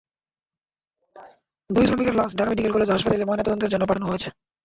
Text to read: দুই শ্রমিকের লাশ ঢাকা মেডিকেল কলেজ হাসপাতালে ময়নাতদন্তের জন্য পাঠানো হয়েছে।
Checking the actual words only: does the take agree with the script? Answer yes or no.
yes